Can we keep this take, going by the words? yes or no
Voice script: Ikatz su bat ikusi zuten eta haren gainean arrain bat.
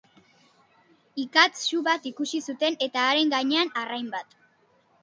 yes